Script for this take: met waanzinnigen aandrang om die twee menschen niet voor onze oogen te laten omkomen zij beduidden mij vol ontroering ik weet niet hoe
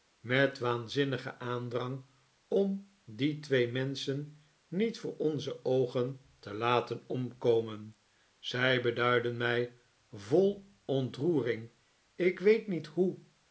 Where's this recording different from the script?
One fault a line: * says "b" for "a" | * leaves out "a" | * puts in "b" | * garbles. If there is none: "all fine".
all fine